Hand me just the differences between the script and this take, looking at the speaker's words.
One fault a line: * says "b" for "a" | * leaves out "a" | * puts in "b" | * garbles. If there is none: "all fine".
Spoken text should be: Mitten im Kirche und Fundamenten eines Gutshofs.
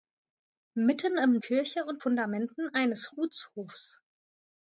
all fine